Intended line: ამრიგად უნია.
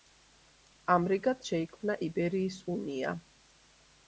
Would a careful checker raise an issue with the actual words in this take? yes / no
yes